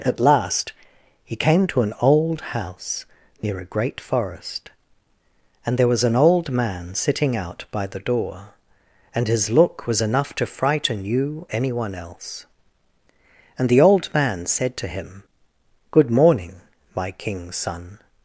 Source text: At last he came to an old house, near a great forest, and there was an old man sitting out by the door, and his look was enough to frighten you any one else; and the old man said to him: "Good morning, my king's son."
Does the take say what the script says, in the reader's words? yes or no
yes